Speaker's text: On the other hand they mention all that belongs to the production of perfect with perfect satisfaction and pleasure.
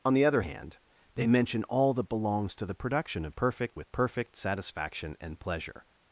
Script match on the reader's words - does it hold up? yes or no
yes